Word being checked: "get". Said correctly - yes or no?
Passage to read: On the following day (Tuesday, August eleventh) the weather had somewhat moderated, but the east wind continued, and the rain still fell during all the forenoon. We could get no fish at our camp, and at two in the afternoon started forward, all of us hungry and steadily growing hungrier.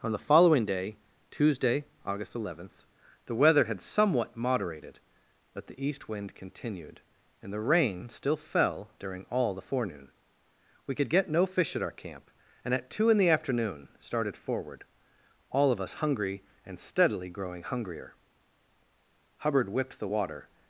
yes